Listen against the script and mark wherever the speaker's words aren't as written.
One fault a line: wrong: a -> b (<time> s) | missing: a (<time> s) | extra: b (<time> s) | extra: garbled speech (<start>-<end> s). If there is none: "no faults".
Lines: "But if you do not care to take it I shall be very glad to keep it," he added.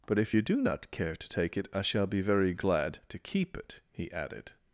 no faults